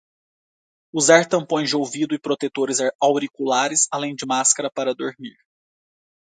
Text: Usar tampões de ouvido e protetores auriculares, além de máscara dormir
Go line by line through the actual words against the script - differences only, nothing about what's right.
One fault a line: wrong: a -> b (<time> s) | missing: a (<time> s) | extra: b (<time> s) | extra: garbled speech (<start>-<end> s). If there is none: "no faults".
extra: para (4.7 s)